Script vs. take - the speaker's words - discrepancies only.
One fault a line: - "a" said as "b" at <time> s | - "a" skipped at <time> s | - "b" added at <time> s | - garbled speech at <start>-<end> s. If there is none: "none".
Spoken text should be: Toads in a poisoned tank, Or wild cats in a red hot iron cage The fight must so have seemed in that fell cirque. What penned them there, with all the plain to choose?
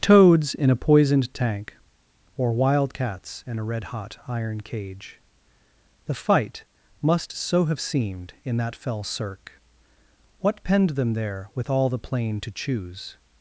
none